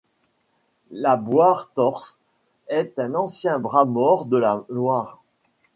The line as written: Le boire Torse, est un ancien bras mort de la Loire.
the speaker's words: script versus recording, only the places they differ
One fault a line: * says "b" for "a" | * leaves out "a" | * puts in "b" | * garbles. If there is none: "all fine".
* says "La" for "Le"